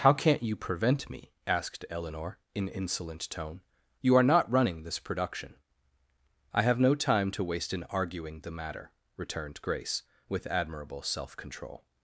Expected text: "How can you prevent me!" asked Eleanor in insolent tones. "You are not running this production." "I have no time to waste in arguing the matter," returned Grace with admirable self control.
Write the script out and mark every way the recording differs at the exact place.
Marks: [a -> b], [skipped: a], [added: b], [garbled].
"How [can -> can't] you prevent me!" asked Eleanor in insolent [tones. -> tone] "You are not running this production." "I have no time to waste in arguing the matter," returned Grace with admirable self control.